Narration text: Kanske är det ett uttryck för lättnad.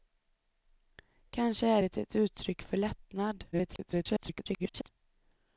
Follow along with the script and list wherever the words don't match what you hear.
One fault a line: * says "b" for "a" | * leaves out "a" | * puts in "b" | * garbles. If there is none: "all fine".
* garbles